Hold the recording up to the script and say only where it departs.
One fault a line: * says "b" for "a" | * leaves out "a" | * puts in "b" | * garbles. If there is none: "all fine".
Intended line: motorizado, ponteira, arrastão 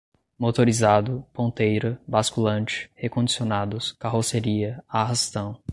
* puts in "basculante recondicionados carroceria"